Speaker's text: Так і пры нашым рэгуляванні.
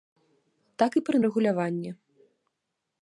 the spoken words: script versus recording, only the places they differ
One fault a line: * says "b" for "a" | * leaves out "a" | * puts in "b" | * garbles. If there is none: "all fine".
* leaves out "нашым"